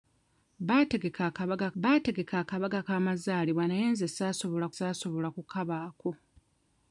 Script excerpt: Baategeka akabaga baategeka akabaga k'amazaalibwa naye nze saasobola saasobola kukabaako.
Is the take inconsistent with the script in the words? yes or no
no